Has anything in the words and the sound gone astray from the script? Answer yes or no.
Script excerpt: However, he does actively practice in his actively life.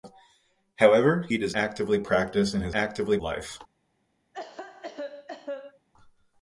yes